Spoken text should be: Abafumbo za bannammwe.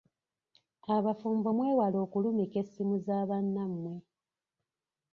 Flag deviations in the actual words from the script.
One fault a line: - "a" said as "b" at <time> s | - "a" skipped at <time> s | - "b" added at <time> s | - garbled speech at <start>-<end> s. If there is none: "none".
- "mwewale okulumika essimu" added at 1.5 s